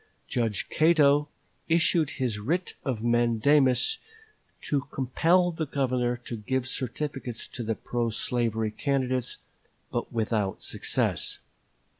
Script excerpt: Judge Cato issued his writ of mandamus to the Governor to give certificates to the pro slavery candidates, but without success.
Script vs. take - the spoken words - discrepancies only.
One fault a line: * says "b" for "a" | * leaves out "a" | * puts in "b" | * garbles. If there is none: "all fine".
* puts in "compel"